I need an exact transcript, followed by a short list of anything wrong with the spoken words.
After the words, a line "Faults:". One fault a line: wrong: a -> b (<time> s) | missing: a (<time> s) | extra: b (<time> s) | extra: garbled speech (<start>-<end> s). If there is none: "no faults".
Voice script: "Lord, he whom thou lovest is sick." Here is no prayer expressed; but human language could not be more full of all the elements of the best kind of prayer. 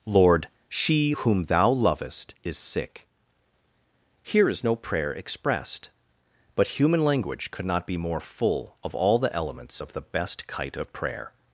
"Lord, she whom thou lovest is sick." Here is no prayer expressed; but human language could not be more full of all the elements of the best kite of prayer.
Faults:
wrong: he -> she (0.7 s)
wrong: kind -> kite (10.5 s)